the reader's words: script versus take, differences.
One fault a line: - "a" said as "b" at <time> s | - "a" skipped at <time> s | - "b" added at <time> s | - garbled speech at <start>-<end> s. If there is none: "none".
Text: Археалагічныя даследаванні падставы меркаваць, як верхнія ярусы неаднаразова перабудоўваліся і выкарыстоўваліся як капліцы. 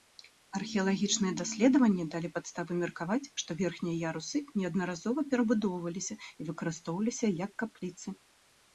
- "далі" added at 2.1 s
- "як" said as "што" at 3.4 s